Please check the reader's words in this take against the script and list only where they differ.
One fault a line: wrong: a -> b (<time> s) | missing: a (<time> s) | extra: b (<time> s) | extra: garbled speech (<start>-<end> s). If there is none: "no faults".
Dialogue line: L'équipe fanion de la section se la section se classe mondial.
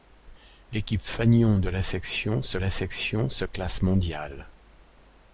no faults